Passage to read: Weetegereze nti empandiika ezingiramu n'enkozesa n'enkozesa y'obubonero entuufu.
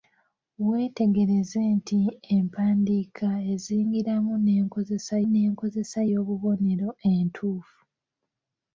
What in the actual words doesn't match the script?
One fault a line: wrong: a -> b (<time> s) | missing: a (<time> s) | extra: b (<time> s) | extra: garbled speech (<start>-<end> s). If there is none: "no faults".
no faults